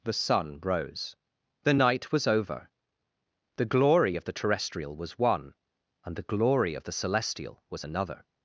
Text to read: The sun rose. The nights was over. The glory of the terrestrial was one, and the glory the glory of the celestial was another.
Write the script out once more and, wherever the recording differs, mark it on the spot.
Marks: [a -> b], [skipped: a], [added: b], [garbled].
The sun rose. The [nights -> night] was over. The glory of the terrestrial was one, and the glory [skipped: the glory] of the celestial was another.